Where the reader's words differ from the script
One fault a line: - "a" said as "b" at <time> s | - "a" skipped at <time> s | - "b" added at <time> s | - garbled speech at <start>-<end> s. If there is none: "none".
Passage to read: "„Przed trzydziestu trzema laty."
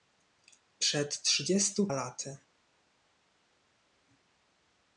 - "trzema" skipped at 1.9 s